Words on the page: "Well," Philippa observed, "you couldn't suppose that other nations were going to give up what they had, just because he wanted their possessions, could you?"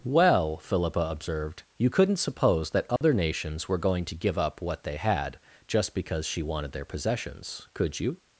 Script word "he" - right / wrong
wrong